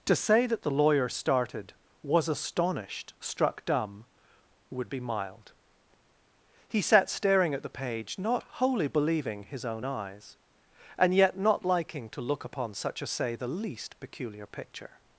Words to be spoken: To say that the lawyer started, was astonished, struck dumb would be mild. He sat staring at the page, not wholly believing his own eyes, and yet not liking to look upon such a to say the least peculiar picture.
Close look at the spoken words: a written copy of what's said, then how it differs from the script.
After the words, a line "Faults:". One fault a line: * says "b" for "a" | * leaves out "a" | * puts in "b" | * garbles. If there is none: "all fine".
To say that the lawyer started, was astonished, struck dumb would be mild. He sat staring at the page, not wholly believing his own eyes, and yet not liking to look upon such a say the least peculiar picture.
Faults:
* leaves out "to"